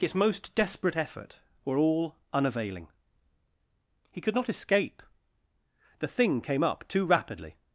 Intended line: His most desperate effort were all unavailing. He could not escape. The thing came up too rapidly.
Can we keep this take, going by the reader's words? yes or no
yes